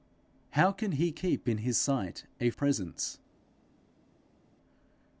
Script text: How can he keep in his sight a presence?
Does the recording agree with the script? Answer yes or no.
yes